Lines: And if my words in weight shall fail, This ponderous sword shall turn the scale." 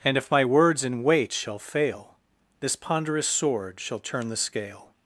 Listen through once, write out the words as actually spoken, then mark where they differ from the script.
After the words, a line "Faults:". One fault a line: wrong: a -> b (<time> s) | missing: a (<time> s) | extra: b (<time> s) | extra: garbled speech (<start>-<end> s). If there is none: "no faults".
And if my words in weight shall fail, This ponderous sword shall turn the scale."
Faults:
no faults